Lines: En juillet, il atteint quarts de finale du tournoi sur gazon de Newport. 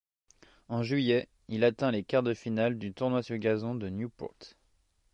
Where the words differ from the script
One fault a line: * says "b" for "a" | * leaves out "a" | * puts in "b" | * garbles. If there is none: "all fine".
* puts in "les"